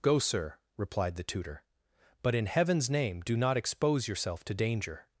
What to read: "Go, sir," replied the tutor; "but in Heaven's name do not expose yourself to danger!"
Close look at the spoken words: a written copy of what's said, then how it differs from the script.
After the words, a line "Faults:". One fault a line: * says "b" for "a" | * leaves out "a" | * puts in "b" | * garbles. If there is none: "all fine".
"Go, sir," replied the tutor; "but in Heaven's name do not expose yourself to danger!"
Faults:
all fine